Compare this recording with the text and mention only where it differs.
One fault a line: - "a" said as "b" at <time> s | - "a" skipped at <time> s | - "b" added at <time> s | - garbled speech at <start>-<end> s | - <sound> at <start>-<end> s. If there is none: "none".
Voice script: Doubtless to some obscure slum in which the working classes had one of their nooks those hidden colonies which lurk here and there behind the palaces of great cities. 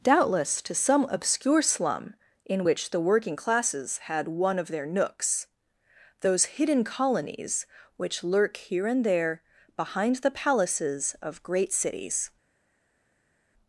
none